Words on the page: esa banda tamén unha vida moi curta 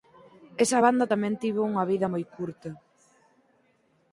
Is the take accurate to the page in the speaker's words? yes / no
no